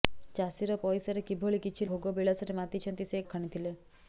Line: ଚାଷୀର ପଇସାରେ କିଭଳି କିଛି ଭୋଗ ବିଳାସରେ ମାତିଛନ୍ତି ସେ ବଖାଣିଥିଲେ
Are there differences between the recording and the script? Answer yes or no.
no